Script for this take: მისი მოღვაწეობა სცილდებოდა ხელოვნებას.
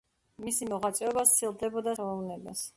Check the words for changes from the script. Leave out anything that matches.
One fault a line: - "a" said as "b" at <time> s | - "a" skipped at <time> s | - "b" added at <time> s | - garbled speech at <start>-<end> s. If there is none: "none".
none